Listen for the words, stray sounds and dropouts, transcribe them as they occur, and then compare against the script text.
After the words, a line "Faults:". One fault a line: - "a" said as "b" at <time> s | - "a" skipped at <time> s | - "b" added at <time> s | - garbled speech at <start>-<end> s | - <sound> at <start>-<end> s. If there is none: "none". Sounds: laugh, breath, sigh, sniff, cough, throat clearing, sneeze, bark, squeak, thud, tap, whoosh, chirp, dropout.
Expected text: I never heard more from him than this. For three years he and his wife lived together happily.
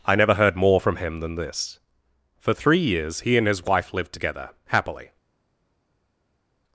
I never heard more from him than this. For three years he and his wife lived together happily.
Faults:
none